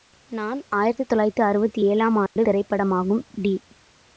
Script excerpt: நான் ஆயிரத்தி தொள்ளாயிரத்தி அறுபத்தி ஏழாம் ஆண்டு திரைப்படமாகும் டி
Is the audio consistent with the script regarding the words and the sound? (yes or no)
no